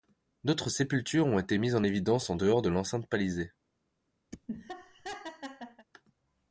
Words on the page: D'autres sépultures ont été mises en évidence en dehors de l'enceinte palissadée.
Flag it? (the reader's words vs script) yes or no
no